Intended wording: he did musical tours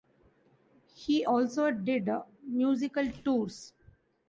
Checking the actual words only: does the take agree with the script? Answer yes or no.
no